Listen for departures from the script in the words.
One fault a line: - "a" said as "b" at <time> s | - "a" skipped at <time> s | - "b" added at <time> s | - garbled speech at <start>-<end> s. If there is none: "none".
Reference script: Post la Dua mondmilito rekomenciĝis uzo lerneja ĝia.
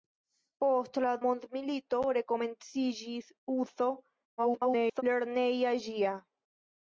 - "Dua" skipped at 1.1 s
- garbled speech at 4.4-5.0 s